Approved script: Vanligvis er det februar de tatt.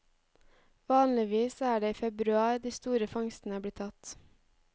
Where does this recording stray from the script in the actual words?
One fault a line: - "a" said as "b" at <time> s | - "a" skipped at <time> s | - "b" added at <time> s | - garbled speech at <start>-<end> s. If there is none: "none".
- "i" added at 1.9 s
- "store fangstene blir" added at 2.7 s